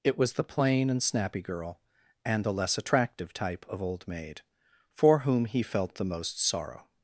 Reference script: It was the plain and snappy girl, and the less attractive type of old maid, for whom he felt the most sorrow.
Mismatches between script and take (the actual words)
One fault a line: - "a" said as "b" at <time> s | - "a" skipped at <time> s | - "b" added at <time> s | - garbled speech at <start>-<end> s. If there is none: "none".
none